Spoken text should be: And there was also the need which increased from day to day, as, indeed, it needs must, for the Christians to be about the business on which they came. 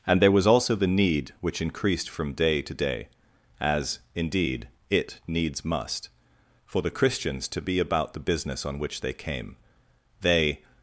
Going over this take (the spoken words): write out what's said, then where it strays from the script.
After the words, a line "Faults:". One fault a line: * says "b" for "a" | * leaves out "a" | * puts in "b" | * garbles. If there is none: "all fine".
And there was also the need which increased from day to day, as, indeed, it needs must, for the Christians to be about the business on which they came. They
Faults:
* puts in "They"